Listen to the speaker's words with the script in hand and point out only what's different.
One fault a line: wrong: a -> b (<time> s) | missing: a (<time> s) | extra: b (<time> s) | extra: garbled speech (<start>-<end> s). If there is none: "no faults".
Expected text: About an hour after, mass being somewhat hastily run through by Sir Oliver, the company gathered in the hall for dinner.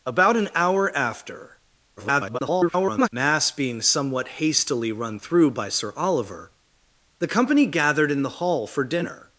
extra: garbled speech (2.0-3.1 s)